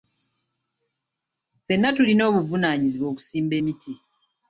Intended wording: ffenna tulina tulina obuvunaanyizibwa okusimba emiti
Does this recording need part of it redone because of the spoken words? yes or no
yes